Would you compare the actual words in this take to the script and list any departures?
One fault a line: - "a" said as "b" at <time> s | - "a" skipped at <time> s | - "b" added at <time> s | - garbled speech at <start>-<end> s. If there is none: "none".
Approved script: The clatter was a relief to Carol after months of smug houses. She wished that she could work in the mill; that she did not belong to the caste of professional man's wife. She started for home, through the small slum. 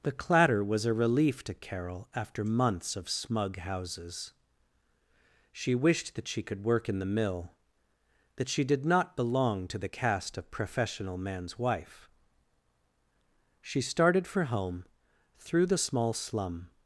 none